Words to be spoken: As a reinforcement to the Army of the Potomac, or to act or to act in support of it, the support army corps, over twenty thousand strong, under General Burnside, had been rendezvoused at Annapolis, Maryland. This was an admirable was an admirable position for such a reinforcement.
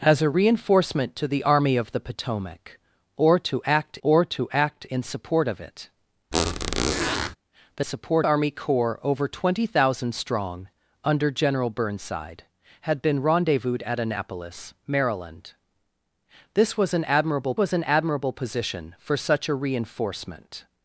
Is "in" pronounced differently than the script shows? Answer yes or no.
no